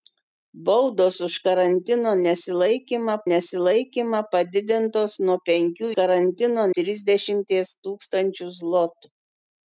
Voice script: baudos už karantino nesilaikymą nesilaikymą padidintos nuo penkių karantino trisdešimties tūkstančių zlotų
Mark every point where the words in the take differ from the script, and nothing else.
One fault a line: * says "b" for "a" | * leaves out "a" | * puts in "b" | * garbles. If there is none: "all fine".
all fine